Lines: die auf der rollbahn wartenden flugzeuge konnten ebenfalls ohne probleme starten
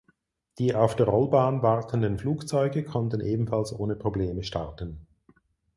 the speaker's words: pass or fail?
pass